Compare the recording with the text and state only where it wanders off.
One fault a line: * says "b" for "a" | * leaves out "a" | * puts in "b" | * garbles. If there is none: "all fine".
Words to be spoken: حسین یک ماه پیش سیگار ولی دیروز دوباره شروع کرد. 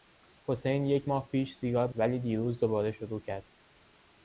all fine